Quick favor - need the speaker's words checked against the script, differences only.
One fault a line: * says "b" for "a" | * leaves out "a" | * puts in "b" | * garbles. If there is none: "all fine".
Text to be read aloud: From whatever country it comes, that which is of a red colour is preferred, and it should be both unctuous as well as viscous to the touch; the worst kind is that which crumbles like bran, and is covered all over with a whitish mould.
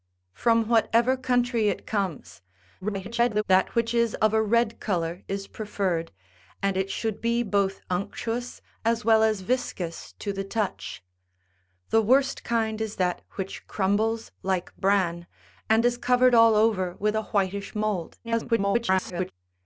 * garbles
* garbles